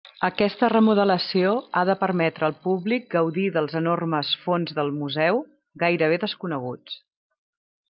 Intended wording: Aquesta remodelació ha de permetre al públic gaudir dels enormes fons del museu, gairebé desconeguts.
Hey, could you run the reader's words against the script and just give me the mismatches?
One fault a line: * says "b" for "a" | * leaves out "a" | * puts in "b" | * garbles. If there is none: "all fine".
all fine